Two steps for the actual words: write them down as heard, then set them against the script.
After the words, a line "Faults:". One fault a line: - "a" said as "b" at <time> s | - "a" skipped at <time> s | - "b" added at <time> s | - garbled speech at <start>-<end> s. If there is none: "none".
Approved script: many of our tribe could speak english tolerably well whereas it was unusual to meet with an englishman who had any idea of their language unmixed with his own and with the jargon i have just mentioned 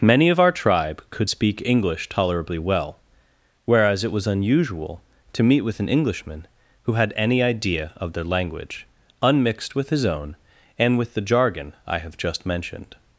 many of our tribe could speak english tolerably well whereas it was unusual to meet with an englishman who had any idea of their language unmixed with his own and with the jargon i have just mentioned
Faults:
none